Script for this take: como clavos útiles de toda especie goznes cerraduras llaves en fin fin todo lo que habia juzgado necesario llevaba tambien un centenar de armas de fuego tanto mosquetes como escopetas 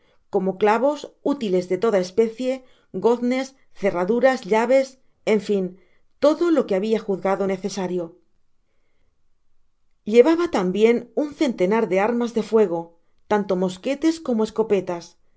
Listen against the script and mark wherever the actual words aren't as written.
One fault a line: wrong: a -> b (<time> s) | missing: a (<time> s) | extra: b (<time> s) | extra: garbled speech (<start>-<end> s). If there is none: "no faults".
missing: fin (5.6 s)